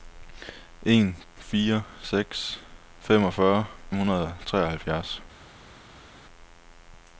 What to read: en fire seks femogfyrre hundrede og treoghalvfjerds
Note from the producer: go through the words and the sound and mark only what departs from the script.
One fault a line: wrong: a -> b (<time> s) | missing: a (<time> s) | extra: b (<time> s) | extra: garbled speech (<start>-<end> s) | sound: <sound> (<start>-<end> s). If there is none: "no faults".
no faults